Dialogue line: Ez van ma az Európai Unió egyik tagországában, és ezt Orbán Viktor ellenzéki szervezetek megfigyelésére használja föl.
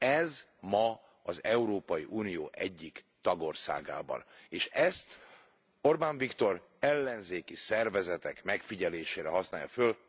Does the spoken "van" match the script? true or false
false